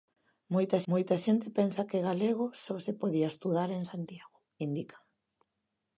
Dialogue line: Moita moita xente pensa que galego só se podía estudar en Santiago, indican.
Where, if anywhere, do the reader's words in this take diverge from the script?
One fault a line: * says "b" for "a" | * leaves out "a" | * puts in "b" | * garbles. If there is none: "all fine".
all fine